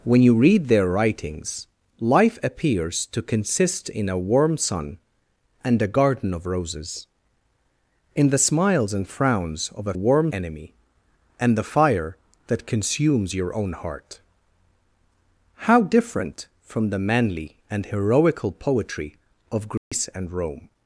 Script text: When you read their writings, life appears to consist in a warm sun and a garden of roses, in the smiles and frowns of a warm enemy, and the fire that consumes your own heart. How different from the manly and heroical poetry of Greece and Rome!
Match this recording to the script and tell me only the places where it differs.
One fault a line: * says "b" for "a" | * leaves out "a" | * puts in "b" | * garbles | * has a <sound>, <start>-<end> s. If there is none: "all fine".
* has a dropout, 19.8-19.9 s